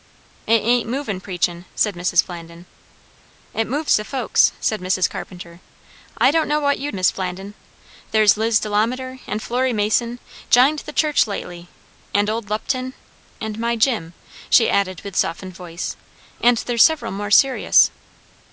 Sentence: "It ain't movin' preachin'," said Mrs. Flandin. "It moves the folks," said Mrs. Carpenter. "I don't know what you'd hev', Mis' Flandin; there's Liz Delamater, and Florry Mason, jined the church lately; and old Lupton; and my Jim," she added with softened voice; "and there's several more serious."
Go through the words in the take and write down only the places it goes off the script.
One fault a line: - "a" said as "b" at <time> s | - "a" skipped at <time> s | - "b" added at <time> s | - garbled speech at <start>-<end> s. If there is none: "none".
- "hev" skipped at 7.0 s